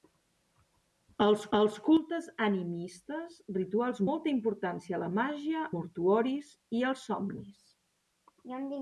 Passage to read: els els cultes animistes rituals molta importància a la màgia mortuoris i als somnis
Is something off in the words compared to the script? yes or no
no